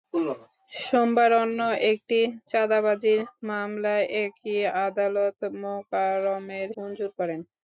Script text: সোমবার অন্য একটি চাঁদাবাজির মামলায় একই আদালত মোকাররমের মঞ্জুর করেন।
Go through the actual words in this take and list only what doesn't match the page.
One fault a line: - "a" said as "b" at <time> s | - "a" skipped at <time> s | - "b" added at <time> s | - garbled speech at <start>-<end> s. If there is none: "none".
none